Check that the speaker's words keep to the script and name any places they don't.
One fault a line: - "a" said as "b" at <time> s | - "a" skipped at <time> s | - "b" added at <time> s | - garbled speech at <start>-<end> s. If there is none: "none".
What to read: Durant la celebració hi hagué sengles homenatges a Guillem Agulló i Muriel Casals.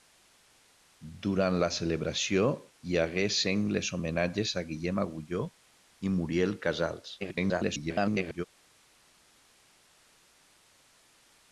- garbled speech at 7.2-8.5 s